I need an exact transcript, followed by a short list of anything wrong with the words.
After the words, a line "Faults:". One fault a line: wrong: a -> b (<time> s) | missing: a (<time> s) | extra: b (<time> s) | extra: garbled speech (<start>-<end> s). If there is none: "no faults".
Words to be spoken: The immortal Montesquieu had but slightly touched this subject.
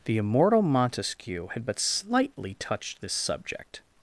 The immortal Montesquieu had but slightly touched this subject.
Faults:
no faults